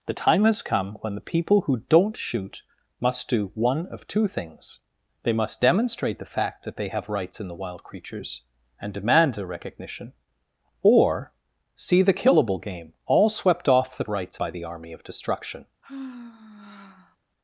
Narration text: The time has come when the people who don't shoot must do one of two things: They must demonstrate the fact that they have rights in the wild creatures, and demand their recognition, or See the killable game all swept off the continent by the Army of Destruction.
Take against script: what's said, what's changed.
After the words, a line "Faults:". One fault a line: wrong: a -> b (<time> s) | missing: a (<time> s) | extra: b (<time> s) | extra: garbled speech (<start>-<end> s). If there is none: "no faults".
The time has come when the people who don't shoot must do one of two things: They must demonstrate the fact that they have rights in the wild creatures, and demand their recognition, or See the killable game all swept off the rights by the Army of Destruction.
Faults:
wrong: continent -> rights (14.1 s)